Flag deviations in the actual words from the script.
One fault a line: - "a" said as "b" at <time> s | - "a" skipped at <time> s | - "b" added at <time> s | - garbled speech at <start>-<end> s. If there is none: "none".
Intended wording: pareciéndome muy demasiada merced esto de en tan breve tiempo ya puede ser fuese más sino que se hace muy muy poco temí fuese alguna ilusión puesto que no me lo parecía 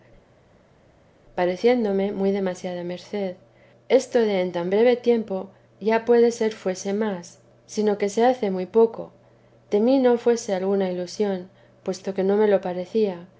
- "muy" skipped at 8.6 s
- "no" added at 10.0 s